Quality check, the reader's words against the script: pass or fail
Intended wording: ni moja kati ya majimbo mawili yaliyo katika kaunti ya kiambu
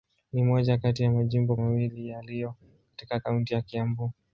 pass